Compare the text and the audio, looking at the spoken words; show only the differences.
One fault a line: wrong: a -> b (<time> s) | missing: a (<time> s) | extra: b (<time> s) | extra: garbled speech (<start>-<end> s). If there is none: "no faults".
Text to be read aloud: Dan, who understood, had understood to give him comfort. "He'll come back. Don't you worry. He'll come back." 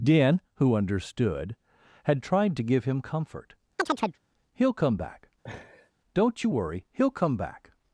wrong: understood -> tried (2.2 s)